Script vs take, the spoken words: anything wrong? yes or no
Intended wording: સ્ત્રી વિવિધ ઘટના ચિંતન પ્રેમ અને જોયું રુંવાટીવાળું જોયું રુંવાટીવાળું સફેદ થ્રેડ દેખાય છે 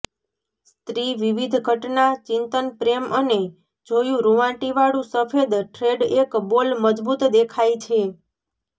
yes